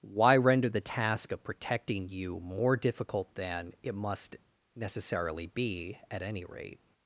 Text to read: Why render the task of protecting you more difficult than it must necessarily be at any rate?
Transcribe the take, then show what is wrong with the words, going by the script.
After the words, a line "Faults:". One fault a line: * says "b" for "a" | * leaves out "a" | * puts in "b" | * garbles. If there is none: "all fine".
Why render the task of protecting you more difficult than it must necessarily be at any rate?
Faults:
all fine